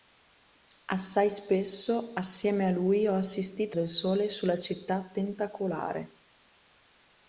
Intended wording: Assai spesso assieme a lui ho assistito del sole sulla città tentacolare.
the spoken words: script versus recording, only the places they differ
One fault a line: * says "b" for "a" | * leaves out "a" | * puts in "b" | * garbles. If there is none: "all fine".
all fine